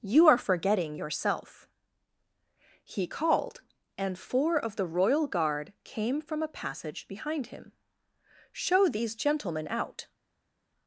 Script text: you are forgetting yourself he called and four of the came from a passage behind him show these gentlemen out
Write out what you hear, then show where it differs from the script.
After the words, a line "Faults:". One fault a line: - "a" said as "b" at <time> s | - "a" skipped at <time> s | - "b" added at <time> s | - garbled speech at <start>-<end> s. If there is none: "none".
you are forgetting yourself he called and four of the royal guard came from a passage behind him show these gentlemen out
Faults:
- "royal guard" added at 4.9 s